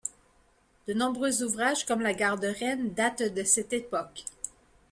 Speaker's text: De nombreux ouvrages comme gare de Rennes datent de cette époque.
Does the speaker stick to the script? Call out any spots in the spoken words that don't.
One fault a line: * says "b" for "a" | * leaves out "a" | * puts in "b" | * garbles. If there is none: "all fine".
* puts in "la"